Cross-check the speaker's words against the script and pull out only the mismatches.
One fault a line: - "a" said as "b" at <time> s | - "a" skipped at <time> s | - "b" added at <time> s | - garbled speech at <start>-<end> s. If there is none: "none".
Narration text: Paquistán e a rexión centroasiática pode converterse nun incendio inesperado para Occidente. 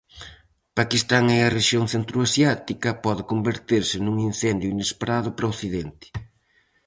none